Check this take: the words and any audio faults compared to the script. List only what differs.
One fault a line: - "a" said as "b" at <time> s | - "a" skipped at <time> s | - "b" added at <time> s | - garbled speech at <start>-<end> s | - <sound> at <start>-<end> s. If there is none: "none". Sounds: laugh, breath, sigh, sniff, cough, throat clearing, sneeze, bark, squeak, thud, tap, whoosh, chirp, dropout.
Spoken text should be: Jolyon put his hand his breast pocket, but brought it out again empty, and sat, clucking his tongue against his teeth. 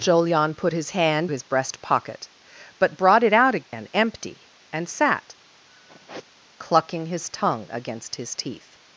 - dropout at 3.6-3.7 s
- sigh at 5.7-6.3 s